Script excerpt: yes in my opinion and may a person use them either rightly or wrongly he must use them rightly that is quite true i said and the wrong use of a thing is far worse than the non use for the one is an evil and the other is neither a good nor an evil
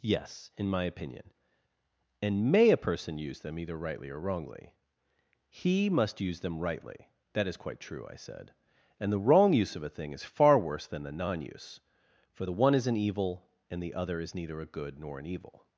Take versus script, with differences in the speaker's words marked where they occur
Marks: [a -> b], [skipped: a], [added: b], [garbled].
yes in my opinion and may a person use them either rightly or wrongly he must use them rightly that is quite true i said and the wrong use of a thing is far worse than the non use for the one is an evil and the other is neither a good nor an evil